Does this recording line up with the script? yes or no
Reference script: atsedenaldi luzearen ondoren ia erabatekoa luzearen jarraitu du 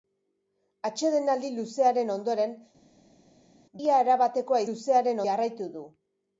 yes